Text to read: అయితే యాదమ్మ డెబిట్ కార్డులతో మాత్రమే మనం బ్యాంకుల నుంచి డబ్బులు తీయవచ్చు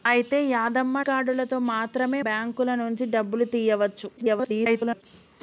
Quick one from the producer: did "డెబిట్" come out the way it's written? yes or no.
no